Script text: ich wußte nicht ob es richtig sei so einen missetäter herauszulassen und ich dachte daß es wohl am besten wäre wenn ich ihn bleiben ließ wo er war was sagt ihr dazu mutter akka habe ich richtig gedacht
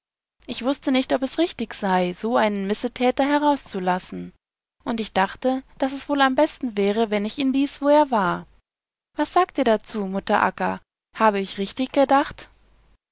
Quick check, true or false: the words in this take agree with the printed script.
false